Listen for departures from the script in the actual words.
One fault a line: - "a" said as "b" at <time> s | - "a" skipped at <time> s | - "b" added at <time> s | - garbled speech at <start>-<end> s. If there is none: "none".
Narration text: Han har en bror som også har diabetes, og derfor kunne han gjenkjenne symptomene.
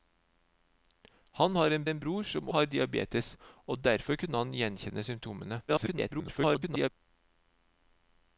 - "en" added at 1.9 s
- "også" skipped at 2.5 s
- garbled speech at 5.7-6.9 s